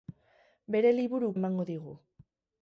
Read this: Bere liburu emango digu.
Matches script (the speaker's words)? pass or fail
pass